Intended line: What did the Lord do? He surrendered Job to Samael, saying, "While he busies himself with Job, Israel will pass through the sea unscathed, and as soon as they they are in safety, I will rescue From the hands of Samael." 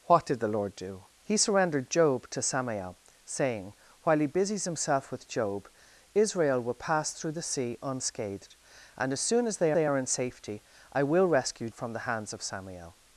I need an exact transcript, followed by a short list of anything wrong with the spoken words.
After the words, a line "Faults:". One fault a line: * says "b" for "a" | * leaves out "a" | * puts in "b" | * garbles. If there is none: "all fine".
What did the Lord do? He surrendered Job to Samael, saying, "While he busies himself with Job, Israel will pass through the sea unscathed, and as soon as they they are in safety, I will rescue From the hands of Samael."
Faults:
all fine